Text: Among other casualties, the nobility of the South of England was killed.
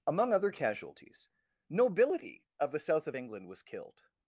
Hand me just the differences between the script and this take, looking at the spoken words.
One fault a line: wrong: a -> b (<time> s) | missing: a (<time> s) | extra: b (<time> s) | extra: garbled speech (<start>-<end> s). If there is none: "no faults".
missing: the (1.3 s)